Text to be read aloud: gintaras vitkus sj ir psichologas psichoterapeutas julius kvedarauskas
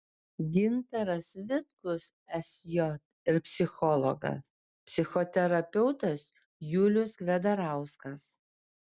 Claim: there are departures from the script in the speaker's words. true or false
false